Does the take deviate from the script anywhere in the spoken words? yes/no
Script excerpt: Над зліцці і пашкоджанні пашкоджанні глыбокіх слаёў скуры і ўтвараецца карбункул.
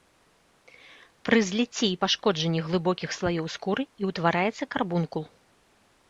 yes